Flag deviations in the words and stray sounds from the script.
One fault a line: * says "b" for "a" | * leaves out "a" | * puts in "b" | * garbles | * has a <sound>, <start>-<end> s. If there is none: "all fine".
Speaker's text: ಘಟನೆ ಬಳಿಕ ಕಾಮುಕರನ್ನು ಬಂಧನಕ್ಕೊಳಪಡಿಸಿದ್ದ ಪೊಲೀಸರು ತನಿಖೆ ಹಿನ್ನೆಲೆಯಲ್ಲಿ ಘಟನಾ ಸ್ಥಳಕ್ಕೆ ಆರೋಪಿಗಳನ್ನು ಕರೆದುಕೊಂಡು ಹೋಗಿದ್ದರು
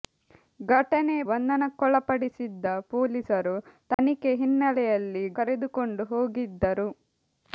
* leaves out "ಬಳಿಕ ಕಾಮುಕರನ್ನು"
* has a dropout, 3.9-4.0 s
* leaves out "ಘಟನಾ ಸ್ಥಳಕ್ಕೆ ಆರೋಪಿಗಳನ್ನು"